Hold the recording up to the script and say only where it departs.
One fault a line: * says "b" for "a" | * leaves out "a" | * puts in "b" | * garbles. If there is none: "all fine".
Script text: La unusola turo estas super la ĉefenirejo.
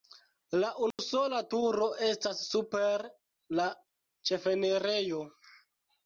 all fine